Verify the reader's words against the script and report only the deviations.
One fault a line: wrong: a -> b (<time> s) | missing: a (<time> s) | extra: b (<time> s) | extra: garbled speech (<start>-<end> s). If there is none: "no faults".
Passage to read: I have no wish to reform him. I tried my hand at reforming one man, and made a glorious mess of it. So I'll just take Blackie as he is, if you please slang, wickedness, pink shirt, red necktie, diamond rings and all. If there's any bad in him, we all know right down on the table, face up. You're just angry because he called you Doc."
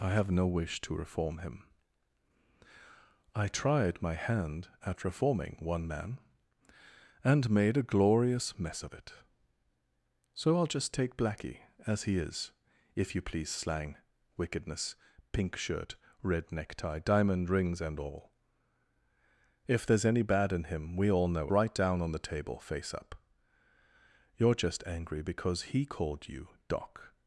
no faults